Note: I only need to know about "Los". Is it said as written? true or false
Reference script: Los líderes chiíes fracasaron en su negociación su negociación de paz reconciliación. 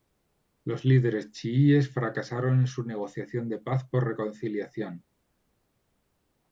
true